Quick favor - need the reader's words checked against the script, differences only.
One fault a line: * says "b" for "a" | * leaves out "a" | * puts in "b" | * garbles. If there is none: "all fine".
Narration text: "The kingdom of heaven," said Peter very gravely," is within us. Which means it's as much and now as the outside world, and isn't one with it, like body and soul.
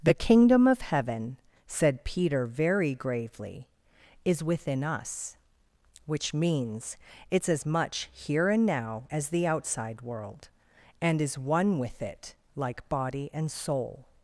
* puts in "here"
* says "is" for "isn't"